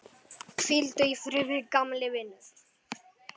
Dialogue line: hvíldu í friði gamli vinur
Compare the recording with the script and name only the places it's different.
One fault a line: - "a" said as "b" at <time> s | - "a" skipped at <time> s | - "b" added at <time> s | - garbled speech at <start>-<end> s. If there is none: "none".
none